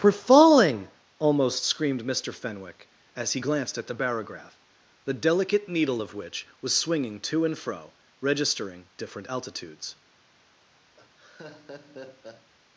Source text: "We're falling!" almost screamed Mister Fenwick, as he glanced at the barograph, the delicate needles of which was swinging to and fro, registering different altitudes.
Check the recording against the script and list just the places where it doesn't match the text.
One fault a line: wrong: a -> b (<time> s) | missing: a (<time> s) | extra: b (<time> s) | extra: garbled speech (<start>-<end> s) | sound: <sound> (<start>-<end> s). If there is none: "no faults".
wrong: needles -> needle (5.7 s)
sound: laugh (11.0-12.5 s)